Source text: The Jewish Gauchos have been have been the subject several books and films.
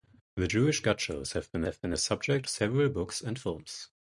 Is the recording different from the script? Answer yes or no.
no